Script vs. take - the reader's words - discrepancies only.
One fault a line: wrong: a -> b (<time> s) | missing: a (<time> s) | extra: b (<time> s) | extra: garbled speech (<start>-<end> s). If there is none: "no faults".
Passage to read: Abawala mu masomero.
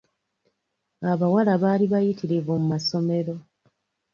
extra: baali bayitirivu (1.6 s)